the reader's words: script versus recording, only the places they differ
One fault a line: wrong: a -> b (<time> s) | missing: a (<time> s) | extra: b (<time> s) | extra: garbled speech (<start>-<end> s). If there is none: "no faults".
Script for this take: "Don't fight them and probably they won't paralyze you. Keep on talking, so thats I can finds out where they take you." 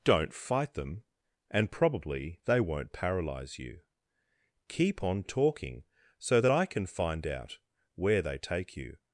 wrong: thats -> that (6.4 s)
wrong: finds -> find (6.9 s)